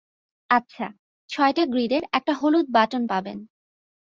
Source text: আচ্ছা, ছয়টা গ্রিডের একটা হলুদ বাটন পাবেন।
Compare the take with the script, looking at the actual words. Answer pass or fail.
pass